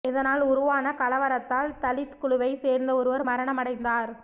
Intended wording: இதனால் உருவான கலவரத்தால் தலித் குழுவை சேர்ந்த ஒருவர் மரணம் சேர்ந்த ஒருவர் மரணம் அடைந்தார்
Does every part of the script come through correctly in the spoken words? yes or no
no